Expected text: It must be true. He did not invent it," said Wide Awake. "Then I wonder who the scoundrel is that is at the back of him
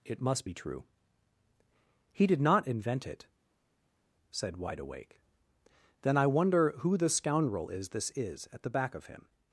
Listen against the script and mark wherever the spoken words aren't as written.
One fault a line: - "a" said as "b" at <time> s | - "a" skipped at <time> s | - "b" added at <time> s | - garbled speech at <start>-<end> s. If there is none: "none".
- "that" said as "this" at 7.9 s